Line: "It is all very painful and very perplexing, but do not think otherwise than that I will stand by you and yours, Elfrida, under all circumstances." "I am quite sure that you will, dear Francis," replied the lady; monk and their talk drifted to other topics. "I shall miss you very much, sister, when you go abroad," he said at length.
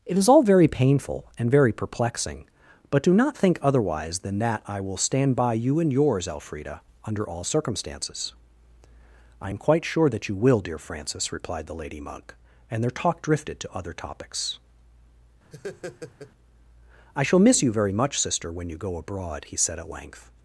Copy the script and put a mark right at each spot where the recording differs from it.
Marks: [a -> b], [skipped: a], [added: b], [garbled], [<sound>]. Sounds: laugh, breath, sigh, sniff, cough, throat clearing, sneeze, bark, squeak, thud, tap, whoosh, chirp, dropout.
"It is all very painful and very perplexing, but do not think otherwise than that I will stand by you and yours, Elfrida, under all circumstances." "I am quite sure that you will, dear Francis," replied the lady; monk and their talk drifted to other topics. [laugh] "I shall miss you very much, sister, when you go abroad," he said at length.